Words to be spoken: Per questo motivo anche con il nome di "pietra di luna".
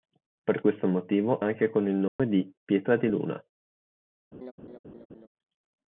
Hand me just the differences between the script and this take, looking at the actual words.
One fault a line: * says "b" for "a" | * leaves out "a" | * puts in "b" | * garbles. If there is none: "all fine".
all fine